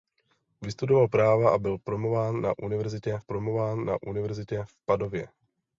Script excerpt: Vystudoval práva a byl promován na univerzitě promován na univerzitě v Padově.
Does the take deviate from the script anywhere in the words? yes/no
no